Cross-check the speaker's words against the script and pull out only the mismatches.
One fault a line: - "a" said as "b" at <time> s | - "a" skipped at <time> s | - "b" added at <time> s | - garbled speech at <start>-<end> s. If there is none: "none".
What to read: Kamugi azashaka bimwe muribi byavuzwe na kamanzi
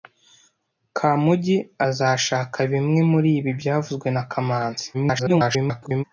- garbled speech at 4.9-6.0 s